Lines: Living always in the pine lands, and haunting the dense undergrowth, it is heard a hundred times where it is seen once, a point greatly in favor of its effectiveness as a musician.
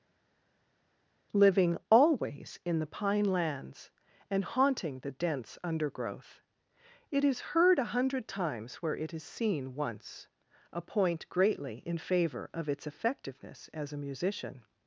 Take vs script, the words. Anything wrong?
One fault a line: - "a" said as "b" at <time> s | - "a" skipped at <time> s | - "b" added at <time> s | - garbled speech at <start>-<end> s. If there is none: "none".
none